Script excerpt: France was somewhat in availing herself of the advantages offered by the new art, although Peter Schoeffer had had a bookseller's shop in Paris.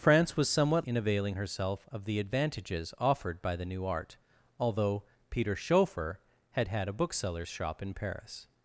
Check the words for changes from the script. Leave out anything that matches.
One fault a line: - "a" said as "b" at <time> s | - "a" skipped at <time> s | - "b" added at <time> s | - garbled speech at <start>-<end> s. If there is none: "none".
none